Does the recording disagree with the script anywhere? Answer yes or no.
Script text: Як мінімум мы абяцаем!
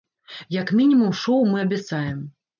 yes